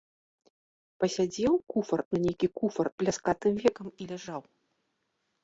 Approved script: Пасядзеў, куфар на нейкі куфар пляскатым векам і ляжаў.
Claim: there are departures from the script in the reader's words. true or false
false